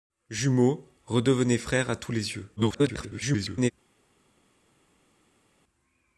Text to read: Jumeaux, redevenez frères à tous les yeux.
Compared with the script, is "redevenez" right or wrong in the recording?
right